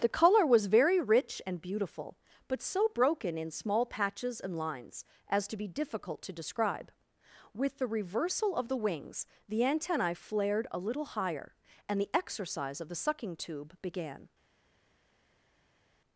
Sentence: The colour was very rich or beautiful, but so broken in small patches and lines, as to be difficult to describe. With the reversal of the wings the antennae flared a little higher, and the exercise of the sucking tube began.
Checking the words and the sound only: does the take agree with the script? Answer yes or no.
no